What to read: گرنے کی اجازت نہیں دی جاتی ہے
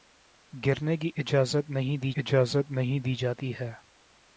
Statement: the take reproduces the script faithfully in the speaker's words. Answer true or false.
false